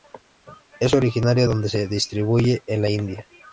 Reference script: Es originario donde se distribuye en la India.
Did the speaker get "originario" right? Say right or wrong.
right